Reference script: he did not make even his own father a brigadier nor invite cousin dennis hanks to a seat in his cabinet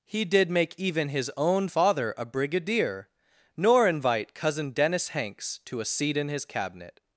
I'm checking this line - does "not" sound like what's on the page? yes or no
no